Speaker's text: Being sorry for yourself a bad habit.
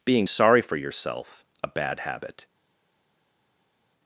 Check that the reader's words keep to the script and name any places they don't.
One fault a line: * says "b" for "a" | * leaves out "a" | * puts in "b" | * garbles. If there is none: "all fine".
all fine